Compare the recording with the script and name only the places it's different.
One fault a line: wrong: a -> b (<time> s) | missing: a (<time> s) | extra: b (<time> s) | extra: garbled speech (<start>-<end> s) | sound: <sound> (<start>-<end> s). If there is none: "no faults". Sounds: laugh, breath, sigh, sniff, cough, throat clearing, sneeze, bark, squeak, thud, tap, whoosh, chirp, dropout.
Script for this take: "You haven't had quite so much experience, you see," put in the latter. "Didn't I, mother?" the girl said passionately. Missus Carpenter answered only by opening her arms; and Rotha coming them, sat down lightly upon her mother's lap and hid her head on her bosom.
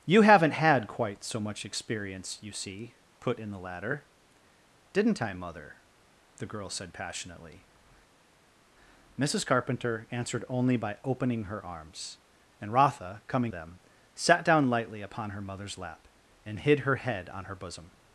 no faults